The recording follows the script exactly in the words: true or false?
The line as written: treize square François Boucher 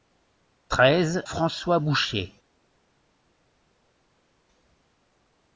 false